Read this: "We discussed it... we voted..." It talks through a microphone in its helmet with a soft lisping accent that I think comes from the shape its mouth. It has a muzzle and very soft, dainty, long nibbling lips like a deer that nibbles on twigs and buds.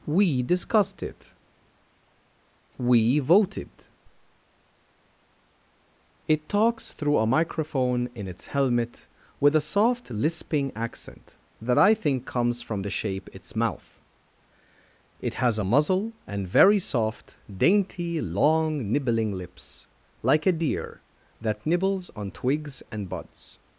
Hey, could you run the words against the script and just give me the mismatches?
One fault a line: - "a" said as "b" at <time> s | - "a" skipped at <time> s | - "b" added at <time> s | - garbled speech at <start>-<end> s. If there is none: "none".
none